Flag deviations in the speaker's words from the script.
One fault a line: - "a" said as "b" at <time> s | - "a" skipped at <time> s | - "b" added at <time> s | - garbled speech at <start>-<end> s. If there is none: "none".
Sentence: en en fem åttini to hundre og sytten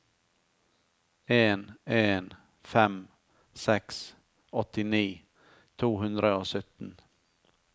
- "seks" added at 3.6 s